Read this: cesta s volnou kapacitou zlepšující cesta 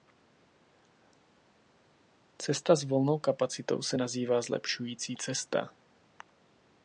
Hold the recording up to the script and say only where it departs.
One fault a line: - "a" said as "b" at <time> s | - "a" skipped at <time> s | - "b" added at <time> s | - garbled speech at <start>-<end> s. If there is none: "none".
- "se nazývá" added at 3.8 s